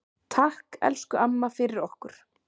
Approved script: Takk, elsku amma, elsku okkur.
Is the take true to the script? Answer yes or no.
no